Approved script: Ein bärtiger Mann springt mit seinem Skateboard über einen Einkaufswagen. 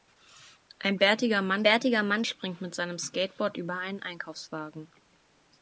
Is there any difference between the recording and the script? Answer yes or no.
yes